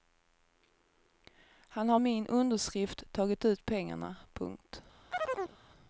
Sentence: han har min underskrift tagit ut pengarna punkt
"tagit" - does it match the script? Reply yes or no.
yes